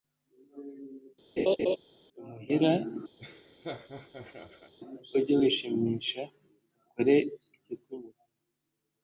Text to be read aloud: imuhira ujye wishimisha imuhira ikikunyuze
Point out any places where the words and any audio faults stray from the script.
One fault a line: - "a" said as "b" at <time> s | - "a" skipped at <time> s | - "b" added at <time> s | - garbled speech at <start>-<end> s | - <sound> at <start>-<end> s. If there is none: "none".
- laugh at 1.4-1.8 s
- laugh at 3.2-4.7 s
- "imuhira" said as "ukore" at 6.8 s